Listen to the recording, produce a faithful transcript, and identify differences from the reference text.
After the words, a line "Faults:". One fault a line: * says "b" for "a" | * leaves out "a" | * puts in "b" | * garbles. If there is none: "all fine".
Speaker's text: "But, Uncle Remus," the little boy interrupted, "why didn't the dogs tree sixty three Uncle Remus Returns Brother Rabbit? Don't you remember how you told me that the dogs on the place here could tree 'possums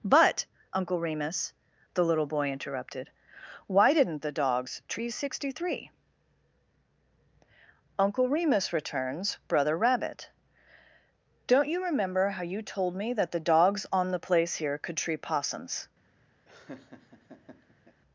"But, Uncle Remus," the little boy interrupted, "why didn't the dogs tree sixty three Uncle Remus Returns Brother Rabbit? Don't you remember how you told me that the dogs on the place here could tree 'possums
Faults:
all fine